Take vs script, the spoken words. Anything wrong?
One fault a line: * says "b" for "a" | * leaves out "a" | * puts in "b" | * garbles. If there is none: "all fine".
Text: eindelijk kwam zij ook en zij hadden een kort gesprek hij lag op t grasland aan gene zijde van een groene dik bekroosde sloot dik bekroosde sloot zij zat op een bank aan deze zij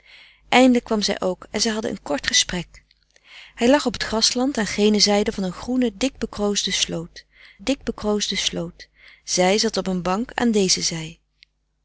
all fine